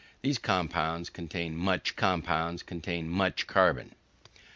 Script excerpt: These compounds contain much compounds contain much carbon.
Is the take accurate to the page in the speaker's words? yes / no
yes